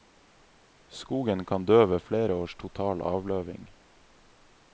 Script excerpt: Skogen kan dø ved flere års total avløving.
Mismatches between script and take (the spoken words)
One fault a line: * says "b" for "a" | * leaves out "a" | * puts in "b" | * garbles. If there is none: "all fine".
all fine